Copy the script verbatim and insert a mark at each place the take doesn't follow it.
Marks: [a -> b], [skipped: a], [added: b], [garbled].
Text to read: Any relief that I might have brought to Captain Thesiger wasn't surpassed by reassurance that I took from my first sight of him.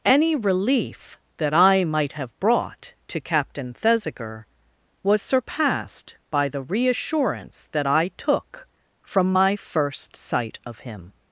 Any relief that I might have brought to Captain Thesiger [wasn't -> was] surpassed by [added: the] reassurance that I took from my first sight of him.